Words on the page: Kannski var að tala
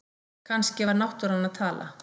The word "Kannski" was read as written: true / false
true